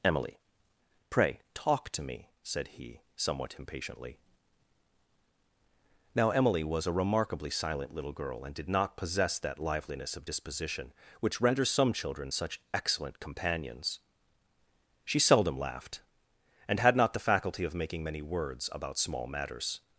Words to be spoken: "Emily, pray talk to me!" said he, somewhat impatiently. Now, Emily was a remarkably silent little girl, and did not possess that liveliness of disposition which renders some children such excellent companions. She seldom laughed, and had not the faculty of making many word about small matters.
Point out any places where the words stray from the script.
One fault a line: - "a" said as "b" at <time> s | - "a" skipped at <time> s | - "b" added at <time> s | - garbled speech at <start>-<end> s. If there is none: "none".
- "word" said as "words" at 18.2 s